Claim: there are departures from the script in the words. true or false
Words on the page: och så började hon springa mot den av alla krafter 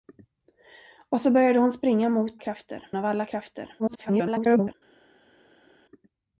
true